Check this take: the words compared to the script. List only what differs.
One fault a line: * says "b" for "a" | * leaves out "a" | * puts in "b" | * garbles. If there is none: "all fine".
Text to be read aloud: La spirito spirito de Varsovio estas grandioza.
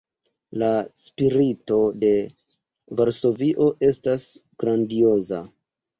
* leaves out "spirito"